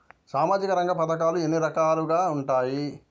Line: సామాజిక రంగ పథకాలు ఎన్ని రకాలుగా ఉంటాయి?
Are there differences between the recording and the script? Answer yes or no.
no